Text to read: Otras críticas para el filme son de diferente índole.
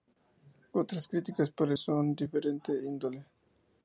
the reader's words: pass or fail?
fail